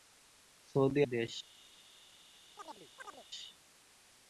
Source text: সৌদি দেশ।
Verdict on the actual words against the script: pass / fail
pass